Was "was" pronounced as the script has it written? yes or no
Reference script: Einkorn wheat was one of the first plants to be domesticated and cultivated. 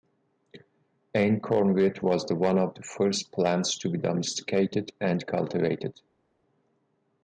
yes